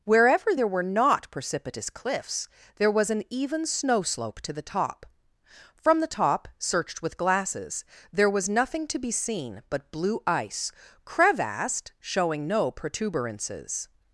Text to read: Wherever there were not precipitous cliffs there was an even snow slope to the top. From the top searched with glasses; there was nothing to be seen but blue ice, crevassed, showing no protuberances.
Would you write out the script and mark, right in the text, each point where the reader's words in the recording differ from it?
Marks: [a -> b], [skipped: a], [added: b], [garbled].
Wherever there were not precipitous cliffs there was an even snow slope to the top. From the top searched with glasses; there was nothing to be seen but blue ice, crevassed, showing no protuberances.